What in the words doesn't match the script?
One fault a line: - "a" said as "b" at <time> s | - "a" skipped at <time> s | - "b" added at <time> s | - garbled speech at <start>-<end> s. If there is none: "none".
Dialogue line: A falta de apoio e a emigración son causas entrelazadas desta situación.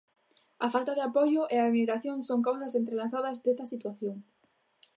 none